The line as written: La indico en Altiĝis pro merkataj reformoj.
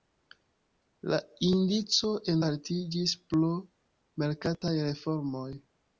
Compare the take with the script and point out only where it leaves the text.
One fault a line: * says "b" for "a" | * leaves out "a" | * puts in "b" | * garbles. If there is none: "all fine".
all fine